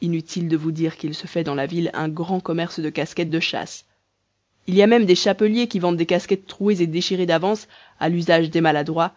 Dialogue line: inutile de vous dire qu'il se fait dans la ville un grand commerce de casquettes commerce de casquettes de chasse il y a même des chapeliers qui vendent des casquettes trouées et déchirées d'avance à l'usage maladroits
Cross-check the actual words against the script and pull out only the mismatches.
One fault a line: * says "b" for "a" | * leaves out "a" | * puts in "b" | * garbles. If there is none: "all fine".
* leaves out "commerce"
* leaves out "casquettes de"
* puts in "des"